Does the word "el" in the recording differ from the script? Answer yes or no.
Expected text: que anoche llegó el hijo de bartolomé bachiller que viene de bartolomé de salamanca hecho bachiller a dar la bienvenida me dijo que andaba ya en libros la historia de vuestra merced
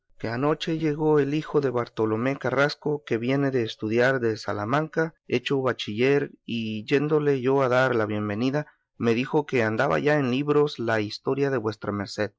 no